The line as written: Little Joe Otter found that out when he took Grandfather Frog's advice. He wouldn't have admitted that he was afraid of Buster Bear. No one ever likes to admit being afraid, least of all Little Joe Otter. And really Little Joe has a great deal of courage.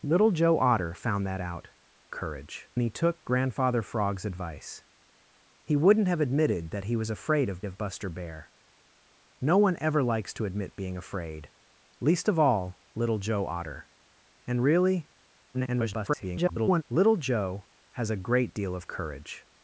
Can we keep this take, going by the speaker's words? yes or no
no